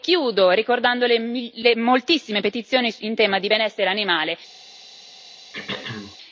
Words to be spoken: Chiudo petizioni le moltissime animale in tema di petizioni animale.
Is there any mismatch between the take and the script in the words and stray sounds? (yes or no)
yes